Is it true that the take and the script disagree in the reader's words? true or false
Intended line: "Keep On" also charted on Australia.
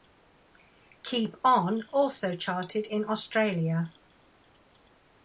true